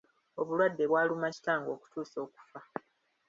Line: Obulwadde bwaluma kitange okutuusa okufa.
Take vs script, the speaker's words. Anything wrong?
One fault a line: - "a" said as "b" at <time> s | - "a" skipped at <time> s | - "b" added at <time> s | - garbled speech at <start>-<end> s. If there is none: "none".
none